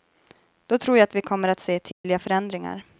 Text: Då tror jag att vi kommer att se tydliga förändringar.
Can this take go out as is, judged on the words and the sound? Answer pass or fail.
fail